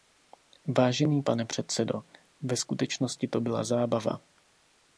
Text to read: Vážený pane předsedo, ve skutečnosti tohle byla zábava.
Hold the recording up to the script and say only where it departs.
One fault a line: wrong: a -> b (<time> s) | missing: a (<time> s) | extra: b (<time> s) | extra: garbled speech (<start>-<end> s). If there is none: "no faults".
wrong: tohle -> to (3.3 s)